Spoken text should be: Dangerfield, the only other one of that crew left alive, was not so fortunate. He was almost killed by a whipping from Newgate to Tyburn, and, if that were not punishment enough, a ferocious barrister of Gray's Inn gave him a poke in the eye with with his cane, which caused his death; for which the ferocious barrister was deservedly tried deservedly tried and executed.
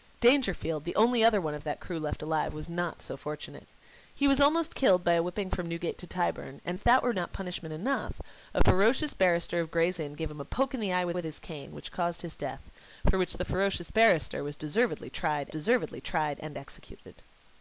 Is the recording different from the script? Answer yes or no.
no